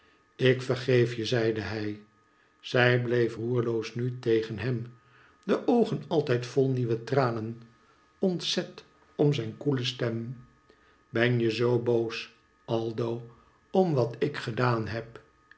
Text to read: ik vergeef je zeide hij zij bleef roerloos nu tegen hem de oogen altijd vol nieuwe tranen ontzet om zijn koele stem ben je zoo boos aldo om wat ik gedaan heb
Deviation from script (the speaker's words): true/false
false